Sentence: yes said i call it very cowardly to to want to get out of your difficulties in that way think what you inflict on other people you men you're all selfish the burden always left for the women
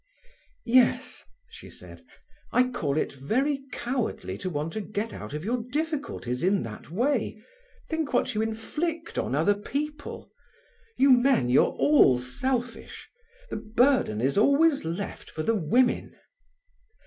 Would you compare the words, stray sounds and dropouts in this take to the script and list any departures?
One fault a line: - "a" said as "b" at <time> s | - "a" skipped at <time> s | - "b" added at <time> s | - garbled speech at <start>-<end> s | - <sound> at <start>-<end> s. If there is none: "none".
- "she" added at 1.5 s
- "to" skipped at 4.5 s
- "is" added at 14.2 s